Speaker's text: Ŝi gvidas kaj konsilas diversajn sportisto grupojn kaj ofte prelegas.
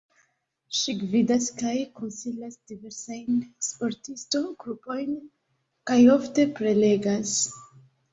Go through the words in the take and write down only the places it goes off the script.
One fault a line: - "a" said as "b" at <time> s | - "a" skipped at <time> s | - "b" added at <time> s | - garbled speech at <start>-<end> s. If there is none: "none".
none